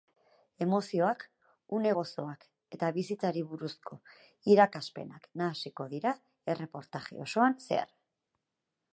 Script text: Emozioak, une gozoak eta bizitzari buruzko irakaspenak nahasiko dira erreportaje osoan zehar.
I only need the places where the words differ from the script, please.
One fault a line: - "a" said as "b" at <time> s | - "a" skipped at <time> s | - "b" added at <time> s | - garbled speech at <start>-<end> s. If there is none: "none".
none